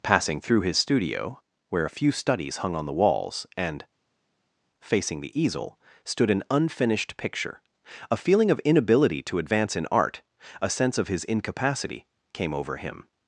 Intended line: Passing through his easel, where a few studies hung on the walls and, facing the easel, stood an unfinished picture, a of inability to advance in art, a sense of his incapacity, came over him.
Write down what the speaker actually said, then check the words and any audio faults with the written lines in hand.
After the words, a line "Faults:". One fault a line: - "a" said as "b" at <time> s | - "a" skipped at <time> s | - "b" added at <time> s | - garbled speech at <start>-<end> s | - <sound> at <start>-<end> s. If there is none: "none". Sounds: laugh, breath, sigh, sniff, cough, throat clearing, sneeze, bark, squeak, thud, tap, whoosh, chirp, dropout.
Passing through his studio, where a few studies hung on the walls and, facing the easel, stood an unfinished picture, a feeling of inability to advance in art, a sense of his incapacity, came over him.
Faults:
- "easel" said as "studio" at 0.8 s
- "feeling" added at 8.2 s